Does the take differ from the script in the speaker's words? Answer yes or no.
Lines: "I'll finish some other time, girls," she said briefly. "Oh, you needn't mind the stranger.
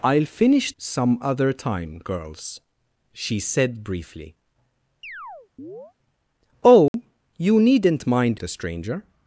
no